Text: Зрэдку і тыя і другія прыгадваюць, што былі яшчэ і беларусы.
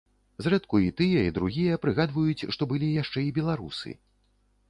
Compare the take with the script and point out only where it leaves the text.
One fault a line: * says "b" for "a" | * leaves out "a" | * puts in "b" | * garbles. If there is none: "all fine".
all fine